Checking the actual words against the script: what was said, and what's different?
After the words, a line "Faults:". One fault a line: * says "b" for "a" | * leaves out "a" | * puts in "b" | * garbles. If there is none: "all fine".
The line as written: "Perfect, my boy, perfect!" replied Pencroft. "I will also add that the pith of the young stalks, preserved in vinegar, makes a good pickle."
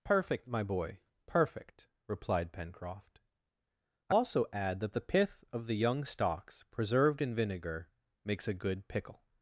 "Perfect, my boy, perfect!" replied Pencroft. "I also add that the pith of the young stalks, preserved in vinegar, makes a good pickle."
Faults:
* leaves out "will"